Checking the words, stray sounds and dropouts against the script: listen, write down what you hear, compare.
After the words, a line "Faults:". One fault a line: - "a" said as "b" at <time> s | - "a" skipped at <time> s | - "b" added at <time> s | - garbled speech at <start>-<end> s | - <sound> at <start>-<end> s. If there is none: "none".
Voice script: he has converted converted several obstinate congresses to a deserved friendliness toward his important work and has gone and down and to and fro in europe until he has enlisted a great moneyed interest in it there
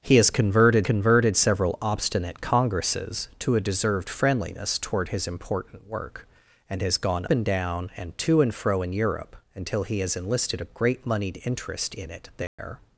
he has converted converted several obstinate congresses to a deserved friendliness toward his important work and has gone and down and to and fro in europe until he has enlisted a great moneyed interest in it there
Faults:
- dropout at 12.5-12.6 s